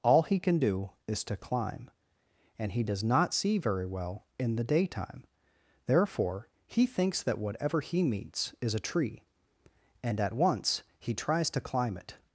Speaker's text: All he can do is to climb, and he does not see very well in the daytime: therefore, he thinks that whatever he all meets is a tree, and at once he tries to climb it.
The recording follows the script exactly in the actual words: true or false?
false